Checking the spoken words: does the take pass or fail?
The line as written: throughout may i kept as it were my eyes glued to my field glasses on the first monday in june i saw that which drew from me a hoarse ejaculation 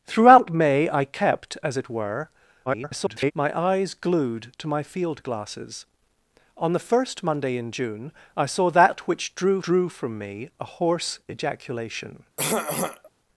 fail